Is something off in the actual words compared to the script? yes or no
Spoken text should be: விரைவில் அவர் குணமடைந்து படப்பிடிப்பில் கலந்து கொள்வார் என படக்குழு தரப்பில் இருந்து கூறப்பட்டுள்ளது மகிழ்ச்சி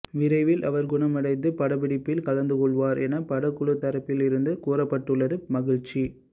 no